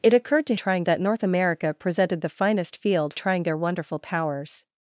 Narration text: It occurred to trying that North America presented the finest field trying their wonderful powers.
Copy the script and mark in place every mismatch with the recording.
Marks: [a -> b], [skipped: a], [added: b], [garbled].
It occurred to trying that North America presented the finest field trying their wonderful powers.